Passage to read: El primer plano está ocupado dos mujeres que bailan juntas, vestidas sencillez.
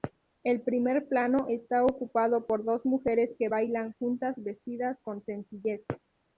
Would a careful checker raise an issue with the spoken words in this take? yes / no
yes